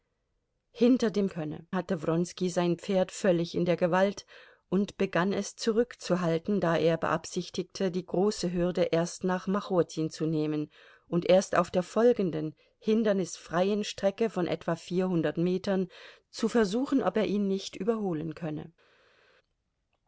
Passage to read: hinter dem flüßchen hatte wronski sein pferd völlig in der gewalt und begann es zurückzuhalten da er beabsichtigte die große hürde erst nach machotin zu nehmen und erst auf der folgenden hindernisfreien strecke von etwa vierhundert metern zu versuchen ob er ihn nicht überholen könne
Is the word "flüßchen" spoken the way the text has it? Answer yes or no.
no